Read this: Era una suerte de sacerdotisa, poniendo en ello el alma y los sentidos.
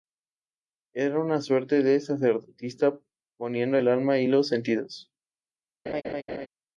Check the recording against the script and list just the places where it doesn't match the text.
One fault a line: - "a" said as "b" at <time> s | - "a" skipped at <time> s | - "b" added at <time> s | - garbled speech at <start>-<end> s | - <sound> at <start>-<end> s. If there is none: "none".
- "en ello" skipped at 3.8 s
- laugh at 5.9-6.5 s